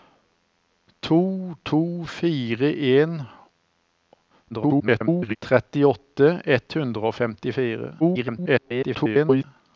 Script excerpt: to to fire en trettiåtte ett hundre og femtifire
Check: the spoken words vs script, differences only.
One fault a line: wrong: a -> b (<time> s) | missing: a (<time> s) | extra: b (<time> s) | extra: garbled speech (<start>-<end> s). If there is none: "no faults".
extra: garbled speech (4.5-5.4 s)
extra: garbled speech (8.0-9.4 s)